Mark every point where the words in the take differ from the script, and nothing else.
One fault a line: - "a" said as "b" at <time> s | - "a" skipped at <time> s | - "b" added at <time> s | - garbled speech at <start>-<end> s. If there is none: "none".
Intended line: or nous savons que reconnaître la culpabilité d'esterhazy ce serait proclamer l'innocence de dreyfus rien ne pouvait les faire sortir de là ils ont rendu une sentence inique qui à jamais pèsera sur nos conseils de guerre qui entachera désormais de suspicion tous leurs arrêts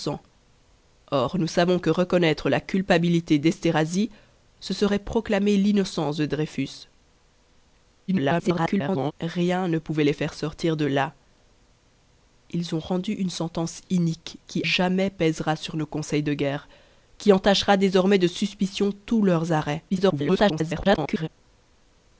- garbled speech at 8.1-9.1 s
- "à" skipped at 14.6 s
- garbled speech at 19.9-21.3 s